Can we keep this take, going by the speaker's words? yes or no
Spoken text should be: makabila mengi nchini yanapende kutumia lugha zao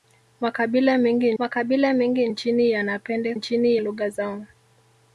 no